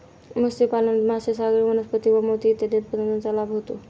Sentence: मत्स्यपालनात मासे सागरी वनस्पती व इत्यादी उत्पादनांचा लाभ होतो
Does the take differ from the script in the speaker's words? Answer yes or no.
yes